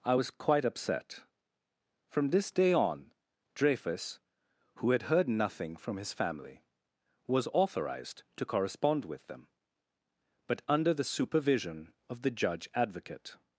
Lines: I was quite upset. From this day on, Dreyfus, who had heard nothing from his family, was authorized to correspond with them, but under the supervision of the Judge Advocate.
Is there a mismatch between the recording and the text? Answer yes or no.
no